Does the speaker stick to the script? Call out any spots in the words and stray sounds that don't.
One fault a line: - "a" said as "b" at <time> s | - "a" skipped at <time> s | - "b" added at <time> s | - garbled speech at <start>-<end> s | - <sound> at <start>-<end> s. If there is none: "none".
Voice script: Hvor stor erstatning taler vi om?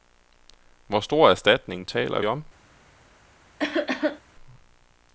- "vi" skipped at 2.2 s
- cough at 3.6-4.2 s